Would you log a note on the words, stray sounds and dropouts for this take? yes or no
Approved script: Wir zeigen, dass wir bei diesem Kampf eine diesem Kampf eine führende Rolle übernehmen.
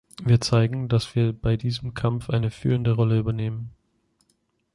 yes